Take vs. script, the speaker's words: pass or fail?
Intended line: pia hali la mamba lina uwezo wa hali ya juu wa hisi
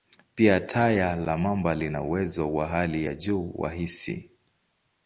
fail